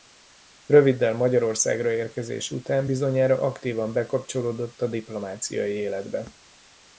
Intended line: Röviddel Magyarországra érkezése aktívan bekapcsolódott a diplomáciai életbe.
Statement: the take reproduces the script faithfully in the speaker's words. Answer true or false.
false